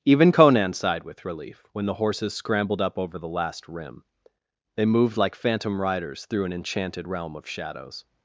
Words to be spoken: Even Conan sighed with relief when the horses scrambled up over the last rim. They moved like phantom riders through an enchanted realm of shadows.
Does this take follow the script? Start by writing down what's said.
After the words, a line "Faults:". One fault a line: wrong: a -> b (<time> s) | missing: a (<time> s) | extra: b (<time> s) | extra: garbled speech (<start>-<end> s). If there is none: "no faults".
Even Conan sighed with relief when the horses scrambled up over the last rim. They moved like phantom riders through an enchanted realm of shadows.
Faults:
no faults